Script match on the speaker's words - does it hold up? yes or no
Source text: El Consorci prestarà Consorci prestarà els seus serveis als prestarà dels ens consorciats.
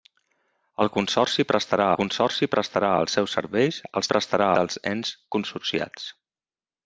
yes